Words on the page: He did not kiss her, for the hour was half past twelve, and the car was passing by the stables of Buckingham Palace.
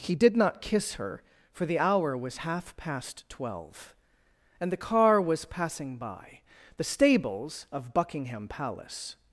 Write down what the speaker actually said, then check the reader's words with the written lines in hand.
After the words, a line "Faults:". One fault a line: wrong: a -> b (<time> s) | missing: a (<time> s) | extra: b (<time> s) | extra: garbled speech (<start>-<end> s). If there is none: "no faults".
He did not kiss her, for the hour was half past twelve, and the car was passing by the stables of Buckingham Palace.
Faults:
no faults